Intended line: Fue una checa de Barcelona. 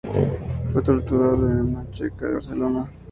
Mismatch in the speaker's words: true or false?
true